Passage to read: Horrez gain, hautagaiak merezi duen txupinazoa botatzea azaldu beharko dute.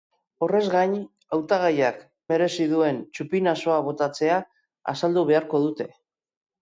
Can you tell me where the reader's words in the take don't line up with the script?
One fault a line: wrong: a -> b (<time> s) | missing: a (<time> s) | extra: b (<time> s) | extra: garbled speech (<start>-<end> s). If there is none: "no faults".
no faults